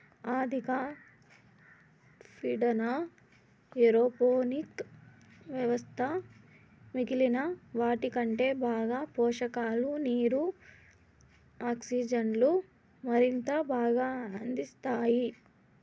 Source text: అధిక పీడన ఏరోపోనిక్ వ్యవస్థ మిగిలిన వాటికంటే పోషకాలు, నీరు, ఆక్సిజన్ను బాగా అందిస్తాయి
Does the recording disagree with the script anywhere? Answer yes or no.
yes